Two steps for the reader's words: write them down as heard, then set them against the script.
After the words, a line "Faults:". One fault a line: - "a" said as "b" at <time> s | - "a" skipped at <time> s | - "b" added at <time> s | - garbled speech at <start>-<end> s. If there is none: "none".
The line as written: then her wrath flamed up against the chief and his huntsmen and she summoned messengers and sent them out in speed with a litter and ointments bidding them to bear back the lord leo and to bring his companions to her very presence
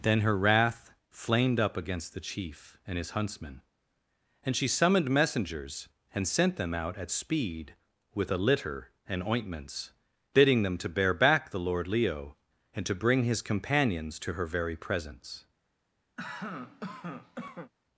then her wrath flamed up against the chief and his huntsmen and she summoned messengers and sent them out at speed with a litter and ointments bidding them to bear back the lord leo and to bring his companions to her very presence
Faults:
- "in" said as "at" at 7.0 s